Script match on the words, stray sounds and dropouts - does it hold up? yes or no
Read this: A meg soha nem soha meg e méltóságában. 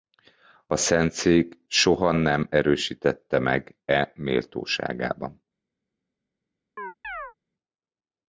no